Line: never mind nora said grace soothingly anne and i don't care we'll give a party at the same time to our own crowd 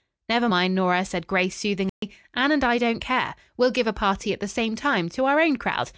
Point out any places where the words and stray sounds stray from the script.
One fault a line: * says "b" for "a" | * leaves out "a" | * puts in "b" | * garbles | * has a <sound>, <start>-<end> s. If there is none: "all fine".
* has a dropout, 1.9-2.0 s